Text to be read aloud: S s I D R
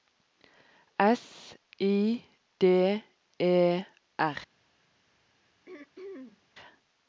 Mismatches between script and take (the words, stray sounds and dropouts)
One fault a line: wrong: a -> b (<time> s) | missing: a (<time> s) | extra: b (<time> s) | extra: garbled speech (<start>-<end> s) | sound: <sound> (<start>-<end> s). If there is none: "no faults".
missing: s (1.6 s)
extra: E (3.4 s)
sound: throat clearing (5.7-6.5 s)